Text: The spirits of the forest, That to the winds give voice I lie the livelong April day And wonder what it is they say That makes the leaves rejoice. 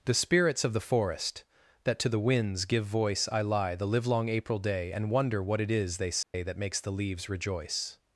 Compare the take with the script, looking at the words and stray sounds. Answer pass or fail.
fail